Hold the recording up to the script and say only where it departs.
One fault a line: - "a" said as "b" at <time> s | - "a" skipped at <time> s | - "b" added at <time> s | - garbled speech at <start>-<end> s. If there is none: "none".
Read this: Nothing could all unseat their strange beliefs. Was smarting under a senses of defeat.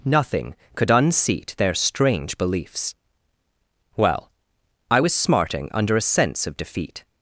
- "all" skipped at 0.9 s
- "Well I" added at 4.0 s
- "senses" said as "sense" at 6.0 s